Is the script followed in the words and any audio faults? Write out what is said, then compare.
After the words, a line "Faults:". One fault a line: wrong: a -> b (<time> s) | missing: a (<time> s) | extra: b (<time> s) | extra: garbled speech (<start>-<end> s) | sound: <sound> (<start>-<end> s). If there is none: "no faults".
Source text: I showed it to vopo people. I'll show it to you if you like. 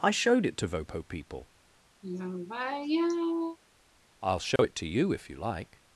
I showed it to vopo people. I'll show it to you if you like.
Faults:
sound: sigh (2.0-3.6 s)
sound: dropout (4.6-4.6 s)